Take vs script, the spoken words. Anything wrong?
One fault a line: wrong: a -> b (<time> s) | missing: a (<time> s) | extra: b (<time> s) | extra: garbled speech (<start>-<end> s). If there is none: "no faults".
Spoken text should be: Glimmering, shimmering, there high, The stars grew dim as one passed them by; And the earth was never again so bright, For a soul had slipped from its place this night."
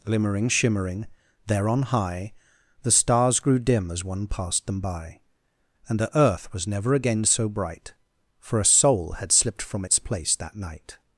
extra: on (1.7 s)
wrong: this -> that (10.4 s)